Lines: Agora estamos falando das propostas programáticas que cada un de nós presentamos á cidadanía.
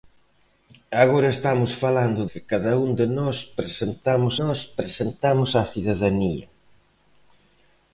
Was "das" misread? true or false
true